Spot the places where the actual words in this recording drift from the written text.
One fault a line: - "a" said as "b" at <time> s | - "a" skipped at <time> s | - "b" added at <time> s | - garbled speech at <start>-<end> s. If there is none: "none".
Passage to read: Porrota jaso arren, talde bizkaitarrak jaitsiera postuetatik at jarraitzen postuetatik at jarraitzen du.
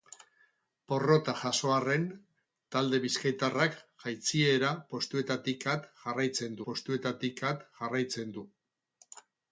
none